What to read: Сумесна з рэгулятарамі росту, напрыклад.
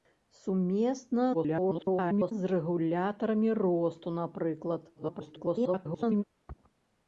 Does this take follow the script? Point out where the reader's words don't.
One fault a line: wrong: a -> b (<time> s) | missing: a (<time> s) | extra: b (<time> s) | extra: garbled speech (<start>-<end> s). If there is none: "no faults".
extra: garbled speech (1.3-2.3 s)
extra: garbled speech (4.9-6.2 s)